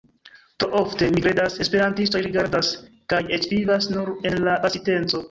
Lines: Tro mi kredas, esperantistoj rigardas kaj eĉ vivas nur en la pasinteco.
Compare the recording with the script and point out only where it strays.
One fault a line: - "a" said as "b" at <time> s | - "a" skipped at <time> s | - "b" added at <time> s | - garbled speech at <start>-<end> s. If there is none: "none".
- "ofte" added at 0.8 s